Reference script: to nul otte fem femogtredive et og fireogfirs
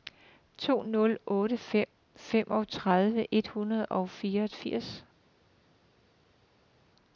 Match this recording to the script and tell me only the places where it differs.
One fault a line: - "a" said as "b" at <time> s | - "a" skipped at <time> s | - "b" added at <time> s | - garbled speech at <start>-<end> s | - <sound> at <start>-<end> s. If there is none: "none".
- "hundrede" added at 3.4 s